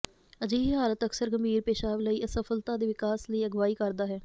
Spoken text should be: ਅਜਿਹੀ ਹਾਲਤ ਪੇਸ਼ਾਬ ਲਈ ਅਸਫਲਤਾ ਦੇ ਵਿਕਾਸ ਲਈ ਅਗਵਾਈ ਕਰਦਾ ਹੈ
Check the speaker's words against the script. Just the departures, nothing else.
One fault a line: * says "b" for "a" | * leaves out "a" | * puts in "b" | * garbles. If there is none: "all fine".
* puts in "ਅਕਸਰ ਗੰਭੀਰ"